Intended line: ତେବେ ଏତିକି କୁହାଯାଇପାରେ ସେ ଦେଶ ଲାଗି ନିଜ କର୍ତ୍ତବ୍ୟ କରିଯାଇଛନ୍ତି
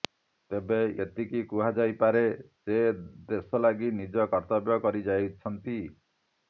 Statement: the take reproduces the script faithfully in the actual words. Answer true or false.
true